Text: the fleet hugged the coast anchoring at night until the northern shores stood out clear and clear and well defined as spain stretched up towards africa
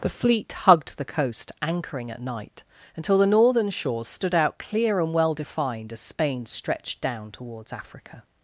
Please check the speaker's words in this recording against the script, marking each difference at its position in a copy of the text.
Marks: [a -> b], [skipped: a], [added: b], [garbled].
the fleet hugged the coast anchoring at night until the northern shores stood out clear and [skipped: clear and] well defined as spain stretched [up -> down] towards africa